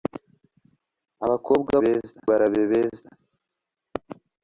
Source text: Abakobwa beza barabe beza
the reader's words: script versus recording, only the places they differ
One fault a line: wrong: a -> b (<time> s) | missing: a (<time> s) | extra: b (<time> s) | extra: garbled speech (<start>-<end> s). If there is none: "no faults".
no faults